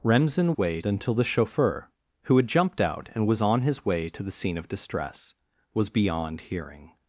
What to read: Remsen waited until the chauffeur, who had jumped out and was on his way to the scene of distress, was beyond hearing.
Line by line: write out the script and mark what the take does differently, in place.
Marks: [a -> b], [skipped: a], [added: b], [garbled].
Remsen [waited -> way] until the chauffeur, who had jumped out and was on his way to the scene of distress, was beyond hearing.